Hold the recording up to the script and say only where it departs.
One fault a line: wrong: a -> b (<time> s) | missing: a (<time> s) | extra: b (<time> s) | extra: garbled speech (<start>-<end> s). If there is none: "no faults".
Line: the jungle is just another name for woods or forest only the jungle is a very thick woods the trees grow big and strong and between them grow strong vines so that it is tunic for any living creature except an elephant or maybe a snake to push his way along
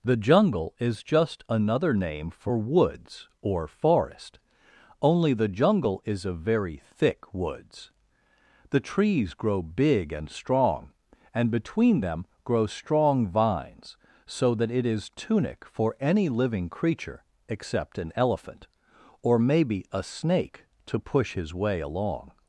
no faults